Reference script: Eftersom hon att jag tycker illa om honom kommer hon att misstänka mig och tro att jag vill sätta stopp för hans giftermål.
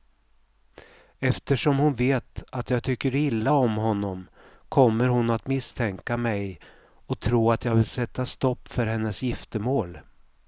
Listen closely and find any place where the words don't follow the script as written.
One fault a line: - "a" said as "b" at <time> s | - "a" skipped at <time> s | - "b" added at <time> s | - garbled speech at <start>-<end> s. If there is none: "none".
- "vet" added at 1.9 s
- "hans" said as "hennes" at 8.9 s